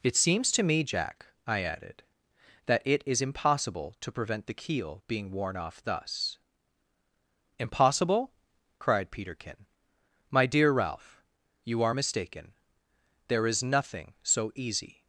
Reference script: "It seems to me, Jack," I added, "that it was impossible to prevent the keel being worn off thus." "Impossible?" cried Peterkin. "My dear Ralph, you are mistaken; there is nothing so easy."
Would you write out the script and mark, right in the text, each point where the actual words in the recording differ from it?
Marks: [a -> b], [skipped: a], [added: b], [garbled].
"It seems to me, Jack," I added, "that it [was -> is] impossible to prevent the keel being worn off thus." "Impossible?" cried Peterkin. "My dear Ralph, you are mistaken; there is nothing so easy."